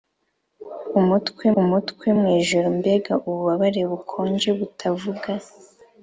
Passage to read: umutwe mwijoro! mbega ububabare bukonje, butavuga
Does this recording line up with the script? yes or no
no